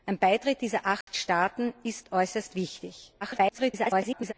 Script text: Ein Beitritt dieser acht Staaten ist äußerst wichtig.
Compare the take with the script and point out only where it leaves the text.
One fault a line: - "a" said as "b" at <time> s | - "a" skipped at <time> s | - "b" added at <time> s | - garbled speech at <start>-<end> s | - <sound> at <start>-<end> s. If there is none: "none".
- dropout at 1.0-1.1 s
- garbled speech at 3.2-4.3 s